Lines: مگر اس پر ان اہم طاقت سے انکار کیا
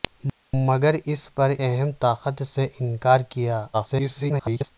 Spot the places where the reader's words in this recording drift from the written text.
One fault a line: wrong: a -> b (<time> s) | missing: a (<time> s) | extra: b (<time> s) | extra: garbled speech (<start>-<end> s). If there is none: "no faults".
missing: ان (1.5 s)
extra: garbled speech (3.7-4.7 s)